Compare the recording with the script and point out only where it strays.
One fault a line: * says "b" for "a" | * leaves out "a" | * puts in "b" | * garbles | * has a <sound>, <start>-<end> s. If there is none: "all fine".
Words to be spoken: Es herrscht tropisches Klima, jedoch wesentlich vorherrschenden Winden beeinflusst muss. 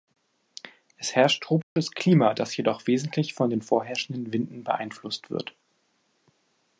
* has a dropout, 1.6-1.8 s
* puts in "das"
* puts in "von den"
* says "wird" for "muss"